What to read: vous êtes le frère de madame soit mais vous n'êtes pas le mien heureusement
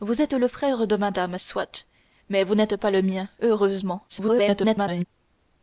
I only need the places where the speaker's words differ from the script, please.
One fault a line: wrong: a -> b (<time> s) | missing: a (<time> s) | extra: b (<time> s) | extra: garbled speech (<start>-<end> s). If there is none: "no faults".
extra: garbled speech (4.1-5.0 s)